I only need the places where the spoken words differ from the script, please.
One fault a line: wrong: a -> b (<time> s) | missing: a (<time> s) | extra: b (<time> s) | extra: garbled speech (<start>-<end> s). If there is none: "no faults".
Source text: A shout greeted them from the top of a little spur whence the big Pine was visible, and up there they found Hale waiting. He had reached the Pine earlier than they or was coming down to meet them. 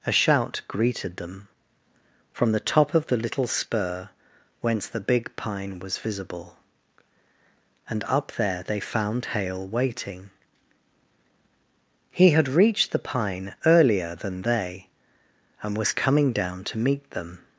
wrong: a -> the (3.1 s)
wrong: or -> and (15.6 s)